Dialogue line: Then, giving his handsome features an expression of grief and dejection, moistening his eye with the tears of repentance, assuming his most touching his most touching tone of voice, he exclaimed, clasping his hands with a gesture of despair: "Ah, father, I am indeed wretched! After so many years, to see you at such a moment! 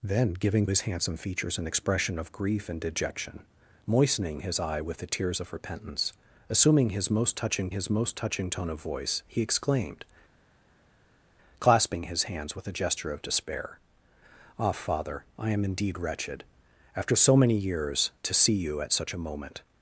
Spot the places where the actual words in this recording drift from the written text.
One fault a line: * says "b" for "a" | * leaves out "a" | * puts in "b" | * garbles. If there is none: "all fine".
all fine